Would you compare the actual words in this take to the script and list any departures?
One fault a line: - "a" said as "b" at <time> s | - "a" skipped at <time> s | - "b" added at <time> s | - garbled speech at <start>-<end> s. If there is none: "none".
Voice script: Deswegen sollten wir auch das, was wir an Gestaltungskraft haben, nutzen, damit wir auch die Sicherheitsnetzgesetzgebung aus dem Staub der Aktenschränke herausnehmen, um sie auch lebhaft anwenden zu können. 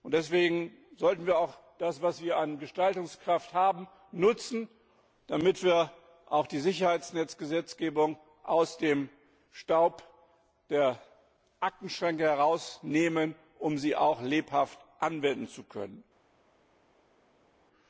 none